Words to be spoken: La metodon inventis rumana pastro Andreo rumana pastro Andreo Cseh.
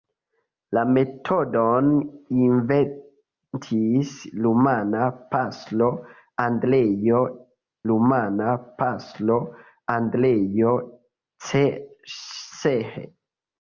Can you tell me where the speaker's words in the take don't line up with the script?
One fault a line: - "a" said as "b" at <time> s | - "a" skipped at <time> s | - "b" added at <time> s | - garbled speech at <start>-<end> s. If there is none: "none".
none